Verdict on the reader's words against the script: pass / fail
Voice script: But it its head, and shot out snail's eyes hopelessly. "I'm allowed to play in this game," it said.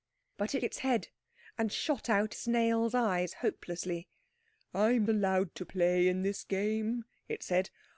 pass